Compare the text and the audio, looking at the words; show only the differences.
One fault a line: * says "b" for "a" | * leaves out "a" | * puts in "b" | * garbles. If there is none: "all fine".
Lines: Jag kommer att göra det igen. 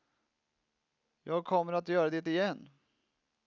all fine